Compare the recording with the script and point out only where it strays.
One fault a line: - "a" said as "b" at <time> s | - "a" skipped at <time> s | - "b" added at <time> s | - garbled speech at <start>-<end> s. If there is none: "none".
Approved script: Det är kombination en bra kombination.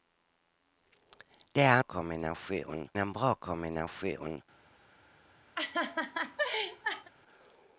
none